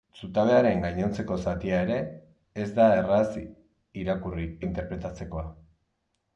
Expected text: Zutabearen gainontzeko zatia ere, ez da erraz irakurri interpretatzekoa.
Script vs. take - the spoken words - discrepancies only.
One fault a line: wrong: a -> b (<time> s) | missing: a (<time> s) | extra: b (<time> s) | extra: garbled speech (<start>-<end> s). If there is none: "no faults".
no faults